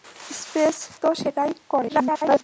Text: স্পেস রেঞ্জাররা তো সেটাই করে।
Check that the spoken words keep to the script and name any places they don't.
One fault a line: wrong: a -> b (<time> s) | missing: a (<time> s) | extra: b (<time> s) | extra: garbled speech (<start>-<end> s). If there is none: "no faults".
missing: রেঞ্জাররা (0.8 s)
extra: garbled speech (1.9-2.4 s)